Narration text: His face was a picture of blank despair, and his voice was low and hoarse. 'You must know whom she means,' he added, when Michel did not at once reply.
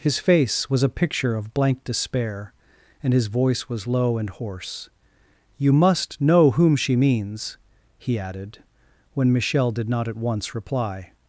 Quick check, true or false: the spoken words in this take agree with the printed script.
true